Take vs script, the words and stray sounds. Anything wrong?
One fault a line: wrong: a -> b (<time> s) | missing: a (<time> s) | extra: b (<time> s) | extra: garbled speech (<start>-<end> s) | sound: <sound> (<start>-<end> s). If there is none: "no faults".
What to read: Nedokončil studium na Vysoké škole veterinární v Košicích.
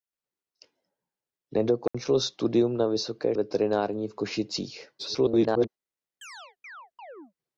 sound: dropout (1.9-1.9 s)
missing: škole (3.4 s)
extra: garbled speech (5.0-5.7 s)
sound: chirp (6.2-7.3 s)